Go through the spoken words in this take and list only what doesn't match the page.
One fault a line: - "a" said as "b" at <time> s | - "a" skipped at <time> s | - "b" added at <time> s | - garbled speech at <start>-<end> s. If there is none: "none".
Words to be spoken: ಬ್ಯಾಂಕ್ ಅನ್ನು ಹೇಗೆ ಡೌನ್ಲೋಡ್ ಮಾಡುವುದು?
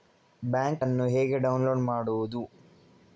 none